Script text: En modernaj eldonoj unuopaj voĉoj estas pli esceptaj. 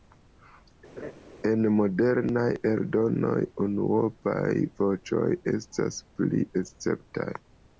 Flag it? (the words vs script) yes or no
no